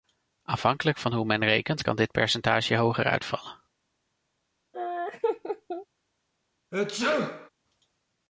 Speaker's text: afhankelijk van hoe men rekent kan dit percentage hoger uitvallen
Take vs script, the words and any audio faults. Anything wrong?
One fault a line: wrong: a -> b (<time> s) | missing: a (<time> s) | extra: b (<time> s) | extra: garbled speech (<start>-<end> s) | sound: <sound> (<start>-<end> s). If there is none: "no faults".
sound: laugh (4.7-5.9 s)
sound: sneeze (6.7-7.5 s)